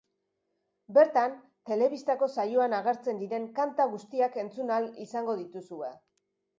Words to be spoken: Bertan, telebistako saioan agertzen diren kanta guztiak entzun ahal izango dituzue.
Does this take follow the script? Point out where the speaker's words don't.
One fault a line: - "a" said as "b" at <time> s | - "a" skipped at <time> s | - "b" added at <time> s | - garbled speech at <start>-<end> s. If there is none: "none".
none